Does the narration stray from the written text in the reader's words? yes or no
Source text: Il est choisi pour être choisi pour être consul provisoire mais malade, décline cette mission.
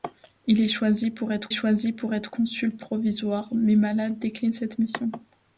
no